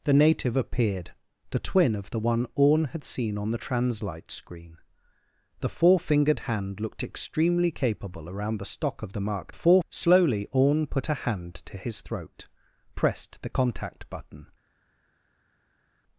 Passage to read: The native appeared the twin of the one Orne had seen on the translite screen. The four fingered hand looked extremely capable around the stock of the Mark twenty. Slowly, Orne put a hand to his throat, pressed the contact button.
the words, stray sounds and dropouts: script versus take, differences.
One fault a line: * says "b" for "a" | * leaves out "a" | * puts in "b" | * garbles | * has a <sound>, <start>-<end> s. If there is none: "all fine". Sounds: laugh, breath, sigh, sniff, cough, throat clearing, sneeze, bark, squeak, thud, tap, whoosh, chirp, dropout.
* says "four" for "twenty"